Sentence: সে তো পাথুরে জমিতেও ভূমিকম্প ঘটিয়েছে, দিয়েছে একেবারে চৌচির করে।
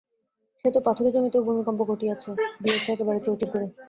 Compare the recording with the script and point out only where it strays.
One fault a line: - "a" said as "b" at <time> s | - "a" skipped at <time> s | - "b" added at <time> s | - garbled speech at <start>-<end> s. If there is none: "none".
none